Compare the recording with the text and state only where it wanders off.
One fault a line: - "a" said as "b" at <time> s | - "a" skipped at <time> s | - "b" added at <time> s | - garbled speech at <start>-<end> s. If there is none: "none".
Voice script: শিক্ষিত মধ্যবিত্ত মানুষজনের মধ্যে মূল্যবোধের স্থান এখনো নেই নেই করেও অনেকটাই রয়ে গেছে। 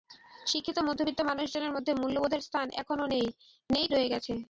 - "করেও অনেকটাই" skipped at 3.9 s